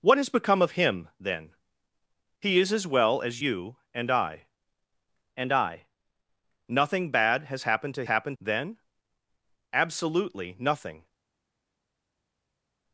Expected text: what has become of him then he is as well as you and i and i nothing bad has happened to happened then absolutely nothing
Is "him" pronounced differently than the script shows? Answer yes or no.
no